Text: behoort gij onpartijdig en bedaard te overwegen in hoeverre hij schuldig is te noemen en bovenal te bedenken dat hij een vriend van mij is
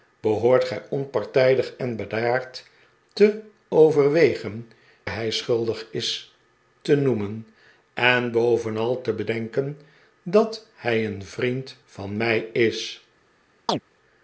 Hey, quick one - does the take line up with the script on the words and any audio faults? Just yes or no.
no